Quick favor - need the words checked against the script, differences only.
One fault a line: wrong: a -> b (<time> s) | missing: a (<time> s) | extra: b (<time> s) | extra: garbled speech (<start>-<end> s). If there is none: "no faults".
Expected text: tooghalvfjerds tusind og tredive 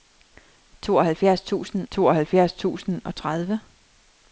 extra: tooghalvfjerds tusind (1.9 s)